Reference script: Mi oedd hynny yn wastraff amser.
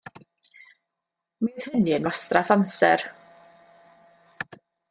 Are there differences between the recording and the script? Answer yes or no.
no